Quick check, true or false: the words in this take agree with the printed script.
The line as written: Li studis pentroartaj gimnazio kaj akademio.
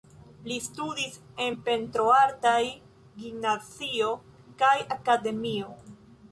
false